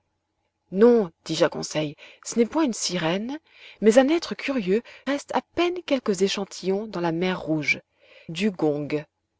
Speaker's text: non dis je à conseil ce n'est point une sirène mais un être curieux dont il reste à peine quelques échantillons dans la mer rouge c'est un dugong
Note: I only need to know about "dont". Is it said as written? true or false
false